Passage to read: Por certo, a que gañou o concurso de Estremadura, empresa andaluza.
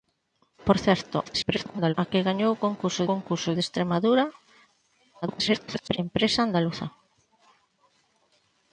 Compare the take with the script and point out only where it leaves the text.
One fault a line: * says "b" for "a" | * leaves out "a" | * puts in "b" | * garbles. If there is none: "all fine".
* garbles
* puts in "concurso"
* garbles